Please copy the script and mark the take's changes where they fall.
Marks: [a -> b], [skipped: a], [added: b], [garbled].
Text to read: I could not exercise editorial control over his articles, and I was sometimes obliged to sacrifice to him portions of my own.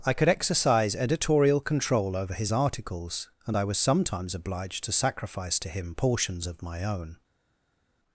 I could [skipped: not] exercise editorial control over his articles, and I was sometimes obliged to sacrifice to him portions of my own.